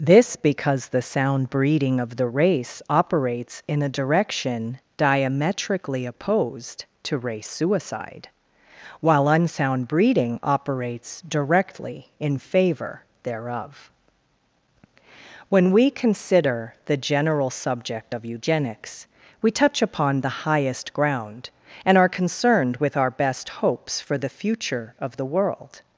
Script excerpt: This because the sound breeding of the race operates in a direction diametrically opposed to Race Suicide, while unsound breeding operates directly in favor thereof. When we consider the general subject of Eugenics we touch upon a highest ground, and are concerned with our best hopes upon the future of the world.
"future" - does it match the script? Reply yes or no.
yes